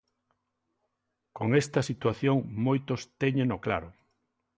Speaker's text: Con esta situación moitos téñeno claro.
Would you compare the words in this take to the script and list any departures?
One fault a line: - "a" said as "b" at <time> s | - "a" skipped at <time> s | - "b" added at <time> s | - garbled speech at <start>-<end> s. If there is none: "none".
none